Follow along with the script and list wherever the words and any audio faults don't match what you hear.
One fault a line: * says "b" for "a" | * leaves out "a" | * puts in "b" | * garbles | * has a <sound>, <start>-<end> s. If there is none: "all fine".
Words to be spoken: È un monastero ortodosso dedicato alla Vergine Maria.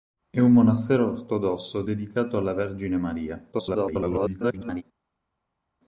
* garbles